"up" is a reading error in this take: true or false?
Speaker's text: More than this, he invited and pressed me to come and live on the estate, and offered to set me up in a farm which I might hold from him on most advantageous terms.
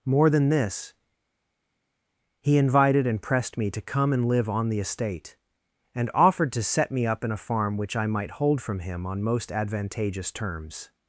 false